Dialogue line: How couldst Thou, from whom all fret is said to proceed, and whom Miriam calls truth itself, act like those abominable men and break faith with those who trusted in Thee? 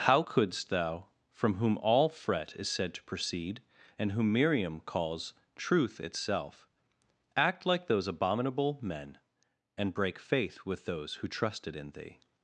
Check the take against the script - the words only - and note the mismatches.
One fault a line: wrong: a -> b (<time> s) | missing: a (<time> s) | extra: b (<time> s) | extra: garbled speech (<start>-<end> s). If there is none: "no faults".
no faults